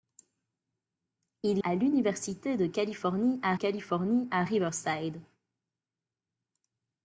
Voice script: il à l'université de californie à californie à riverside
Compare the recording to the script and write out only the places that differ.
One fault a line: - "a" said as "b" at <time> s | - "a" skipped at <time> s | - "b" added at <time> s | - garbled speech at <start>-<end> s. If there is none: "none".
none